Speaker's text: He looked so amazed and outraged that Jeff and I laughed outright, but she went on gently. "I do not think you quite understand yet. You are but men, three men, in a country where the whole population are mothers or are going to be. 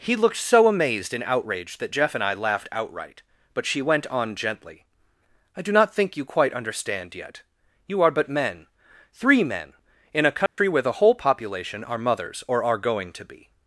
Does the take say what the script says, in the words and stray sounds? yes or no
no